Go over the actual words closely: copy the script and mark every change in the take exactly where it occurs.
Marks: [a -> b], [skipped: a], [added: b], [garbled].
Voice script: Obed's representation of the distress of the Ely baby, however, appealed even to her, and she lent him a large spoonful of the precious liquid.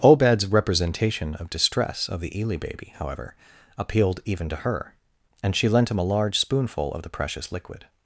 Obed's representation of [skipped: the] distress of the Ely baby, however, appealed even to her, and she lent him a large spoonful of the precious liquid.